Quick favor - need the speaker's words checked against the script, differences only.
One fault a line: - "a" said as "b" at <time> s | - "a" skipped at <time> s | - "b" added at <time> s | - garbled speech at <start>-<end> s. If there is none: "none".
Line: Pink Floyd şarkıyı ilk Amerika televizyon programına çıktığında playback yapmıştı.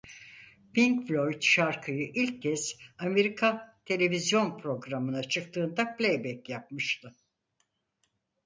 - "kez" added at 2.4 s